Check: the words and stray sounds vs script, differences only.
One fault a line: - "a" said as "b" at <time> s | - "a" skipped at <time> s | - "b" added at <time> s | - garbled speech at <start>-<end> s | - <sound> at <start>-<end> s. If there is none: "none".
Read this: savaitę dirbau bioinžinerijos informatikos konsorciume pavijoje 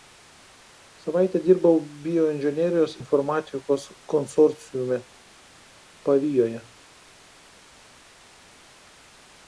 none